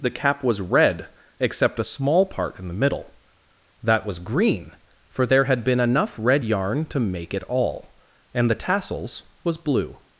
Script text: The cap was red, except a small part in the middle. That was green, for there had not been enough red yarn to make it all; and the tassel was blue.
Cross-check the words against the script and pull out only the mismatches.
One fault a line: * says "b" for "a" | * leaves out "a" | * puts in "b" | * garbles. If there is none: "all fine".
* leaves out "not"
* says "tassels" for "tassel"